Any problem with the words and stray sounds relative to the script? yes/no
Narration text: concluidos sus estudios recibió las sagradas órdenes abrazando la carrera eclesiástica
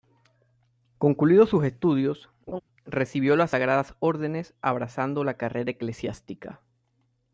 yes